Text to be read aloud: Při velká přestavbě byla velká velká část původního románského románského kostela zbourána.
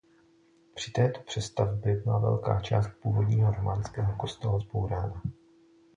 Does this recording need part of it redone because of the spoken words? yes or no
yes